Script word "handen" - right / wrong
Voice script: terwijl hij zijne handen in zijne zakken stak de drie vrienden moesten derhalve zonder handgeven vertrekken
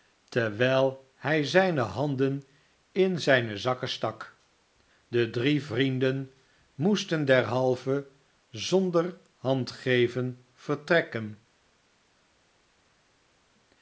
right